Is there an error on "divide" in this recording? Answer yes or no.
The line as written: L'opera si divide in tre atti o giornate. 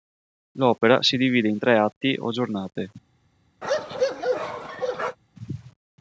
no